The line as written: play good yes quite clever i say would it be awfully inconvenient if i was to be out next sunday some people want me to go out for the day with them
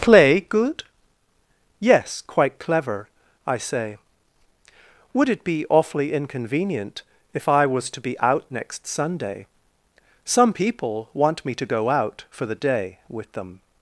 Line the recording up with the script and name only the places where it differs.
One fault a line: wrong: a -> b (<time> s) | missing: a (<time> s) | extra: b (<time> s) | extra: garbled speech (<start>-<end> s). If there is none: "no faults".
no faults